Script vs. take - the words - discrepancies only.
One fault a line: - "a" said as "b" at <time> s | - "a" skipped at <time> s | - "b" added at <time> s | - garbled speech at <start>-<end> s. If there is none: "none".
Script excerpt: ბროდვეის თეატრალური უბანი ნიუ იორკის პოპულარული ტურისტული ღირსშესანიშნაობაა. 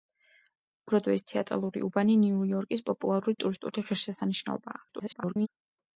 - garbled speech at 4.9-5.5 s